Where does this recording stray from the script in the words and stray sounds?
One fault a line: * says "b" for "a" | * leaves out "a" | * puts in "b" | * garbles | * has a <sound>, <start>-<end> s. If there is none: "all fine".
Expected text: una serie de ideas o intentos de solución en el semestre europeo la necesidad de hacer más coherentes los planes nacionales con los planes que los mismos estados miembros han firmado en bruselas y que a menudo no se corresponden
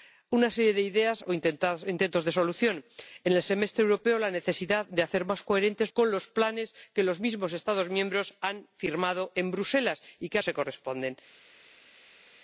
* leaves out "los planes nacionales"
* leaves out "menudo no"